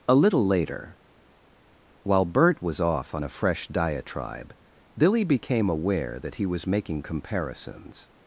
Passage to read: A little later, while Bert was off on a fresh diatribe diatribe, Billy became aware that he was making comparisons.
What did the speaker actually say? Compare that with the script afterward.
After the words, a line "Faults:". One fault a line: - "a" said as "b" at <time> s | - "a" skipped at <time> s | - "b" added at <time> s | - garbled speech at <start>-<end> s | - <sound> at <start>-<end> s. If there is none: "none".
A little later, while Bert was off on a fresh diatribe, Billy became aware that he was making comparisons.
Faults:
- "diatribe" skipped at 4.5 s